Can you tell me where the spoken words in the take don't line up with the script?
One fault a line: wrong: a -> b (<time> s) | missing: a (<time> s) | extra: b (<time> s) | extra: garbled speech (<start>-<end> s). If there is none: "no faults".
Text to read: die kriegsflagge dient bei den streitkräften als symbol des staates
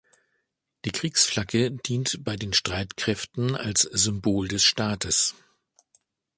no faults